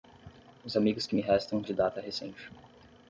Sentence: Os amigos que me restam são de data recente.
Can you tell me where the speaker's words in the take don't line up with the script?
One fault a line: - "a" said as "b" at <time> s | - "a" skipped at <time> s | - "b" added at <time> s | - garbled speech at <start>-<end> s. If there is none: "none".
- "são" skipped at 1.6 s